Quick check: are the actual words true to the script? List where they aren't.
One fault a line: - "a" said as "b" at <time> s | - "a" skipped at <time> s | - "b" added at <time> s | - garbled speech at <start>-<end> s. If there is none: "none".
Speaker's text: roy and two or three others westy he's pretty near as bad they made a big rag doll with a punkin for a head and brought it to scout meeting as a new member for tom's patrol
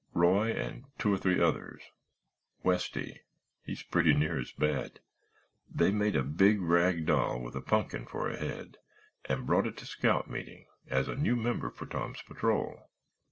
none